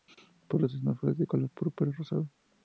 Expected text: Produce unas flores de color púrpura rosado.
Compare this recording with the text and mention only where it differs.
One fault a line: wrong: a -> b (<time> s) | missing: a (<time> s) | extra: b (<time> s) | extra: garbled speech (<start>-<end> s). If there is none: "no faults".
no faults